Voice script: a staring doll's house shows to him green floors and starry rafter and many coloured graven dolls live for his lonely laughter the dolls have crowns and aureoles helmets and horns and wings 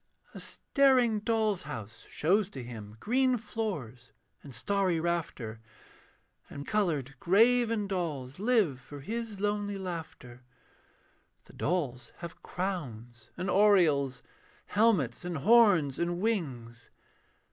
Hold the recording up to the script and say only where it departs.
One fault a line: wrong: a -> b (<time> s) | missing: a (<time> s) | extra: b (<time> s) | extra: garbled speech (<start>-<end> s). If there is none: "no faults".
missing: many (6.6 s)